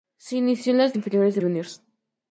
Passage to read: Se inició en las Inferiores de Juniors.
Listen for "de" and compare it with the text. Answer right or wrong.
right